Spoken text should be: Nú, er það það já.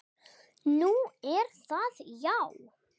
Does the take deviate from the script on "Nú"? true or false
false